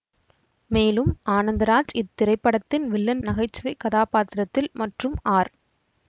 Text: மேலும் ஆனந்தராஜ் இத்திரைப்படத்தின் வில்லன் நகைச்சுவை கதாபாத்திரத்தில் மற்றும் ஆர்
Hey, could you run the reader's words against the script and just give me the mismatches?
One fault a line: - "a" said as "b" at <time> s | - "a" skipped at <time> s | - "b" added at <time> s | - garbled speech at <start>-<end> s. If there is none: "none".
none